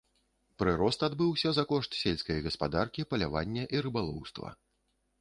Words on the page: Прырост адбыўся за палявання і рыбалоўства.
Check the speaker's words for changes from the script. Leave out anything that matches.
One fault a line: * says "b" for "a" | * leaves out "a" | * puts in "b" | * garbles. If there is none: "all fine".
* puts in "кошт сельскай гаспадаркі"